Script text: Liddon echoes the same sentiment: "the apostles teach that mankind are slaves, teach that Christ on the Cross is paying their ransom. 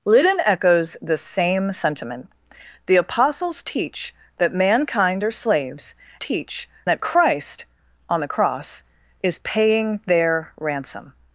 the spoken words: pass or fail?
pass